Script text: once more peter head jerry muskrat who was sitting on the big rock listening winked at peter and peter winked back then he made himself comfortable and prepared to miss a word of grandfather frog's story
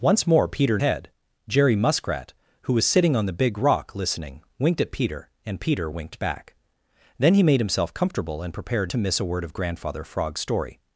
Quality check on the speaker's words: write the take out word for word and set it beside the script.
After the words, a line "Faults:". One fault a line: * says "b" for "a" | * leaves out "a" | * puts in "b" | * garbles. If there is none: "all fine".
once more peter head jerry muskrat who was sitting on the big rock listening winked at peter and peter winked back then he made himself comfortable and prepared to miss a word of grandfather frog's story
Faults:
all fine